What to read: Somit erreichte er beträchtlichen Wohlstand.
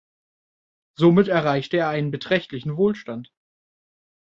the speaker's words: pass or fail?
fail